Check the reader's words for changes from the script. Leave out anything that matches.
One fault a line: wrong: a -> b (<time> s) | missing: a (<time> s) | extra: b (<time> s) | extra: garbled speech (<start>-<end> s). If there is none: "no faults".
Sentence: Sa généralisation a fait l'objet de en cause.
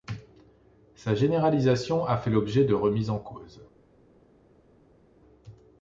extra: remises (2.7 s)